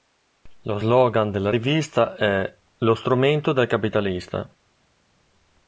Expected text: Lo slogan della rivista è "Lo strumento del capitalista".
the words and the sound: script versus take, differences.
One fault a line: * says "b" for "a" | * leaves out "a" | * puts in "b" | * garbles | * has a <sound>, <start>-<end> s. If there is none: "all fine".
all fine